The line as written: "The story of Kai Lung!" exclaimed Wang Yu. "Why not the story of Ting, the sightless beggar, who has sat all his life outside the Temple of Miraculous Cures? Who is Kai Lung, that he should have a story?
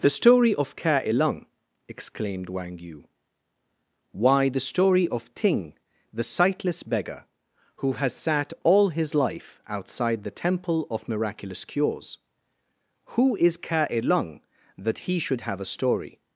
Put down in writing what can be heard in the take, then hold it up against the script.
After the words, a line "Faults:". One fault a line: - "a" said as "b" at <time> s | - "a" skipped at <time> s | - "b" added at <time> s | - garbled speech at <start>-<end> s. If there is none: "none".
"The story of Kai Lung!" exclaimed Wang Yu. "Why the story of Ting, the sightless beggar, who has sat all his life outside the Temple of Miraculous Cures? Who is Kai Lung, that he should have a story?
Faults:
- "not" skipped at 4.5 s